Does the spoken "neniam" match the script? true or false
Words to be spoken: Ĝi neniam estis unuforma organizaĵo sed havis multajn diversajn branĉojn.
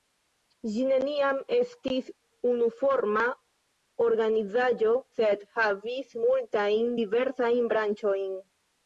true